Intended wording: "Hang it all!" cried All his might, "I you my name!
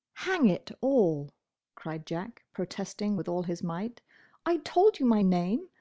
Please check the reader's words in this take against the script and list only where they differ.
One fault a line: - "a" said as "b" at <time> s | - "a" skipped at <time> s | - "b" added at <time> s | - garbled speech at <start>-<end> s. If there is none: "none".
- "Jack protesting with" added at 2.1 s
- "told" added at 4.6 s